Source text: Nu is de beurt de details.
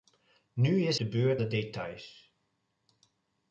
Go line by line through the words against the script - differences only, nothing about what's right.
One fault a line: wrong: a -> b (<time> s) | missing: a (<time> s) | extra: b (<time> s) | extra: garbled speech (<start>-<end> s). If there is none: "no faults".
no faults